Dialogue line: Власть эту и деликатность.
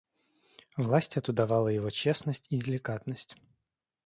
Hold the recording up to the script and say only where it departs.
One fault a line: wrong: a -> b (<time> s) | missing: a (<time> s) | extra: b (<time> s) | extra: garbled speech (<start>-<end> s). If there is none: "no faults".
extra: давала его честность (1.3 s)